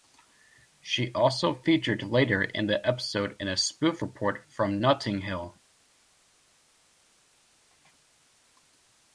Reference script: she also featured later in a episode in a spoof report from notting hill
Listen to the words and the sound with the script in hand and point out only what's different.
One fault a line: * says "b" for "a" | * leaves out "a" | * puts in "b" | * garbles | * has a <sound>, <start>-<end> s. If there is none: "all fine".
* says "the" for "a"